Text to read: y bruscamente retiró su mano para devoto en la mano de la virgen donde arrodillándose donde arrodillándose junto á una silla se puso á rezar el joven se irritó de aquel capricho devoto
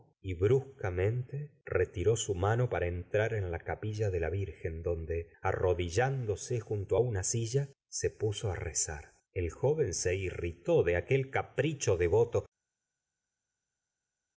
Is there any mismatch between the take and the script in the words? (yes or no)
yes